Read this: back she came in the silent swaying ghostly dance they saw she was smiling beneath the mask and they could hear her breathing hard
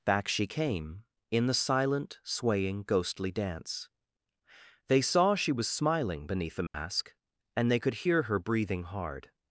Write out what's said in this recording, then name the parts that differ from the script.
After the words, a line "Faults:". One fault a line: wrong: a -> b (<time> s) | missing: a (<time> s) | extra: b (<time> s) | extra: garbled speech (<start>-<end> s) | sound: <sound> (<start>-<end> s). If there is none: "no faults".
back she came in the silent swaying ghostly dance they saw she was smiling beneath the mask and they could hear her breathing hard
Faults:
sound: dropout (6.7-6.7 s)